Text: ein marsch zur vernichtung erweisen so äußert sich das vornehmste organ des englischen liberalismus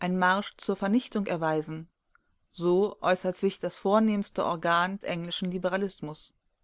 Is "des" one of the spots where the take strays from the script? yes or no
yes